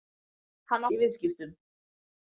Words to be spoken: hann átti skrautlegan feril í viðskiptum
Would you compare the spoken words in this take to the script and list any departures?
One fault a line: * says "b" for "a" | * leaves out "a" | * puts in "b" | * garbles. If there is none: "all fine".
* leaves out "átti skrautlegan feril"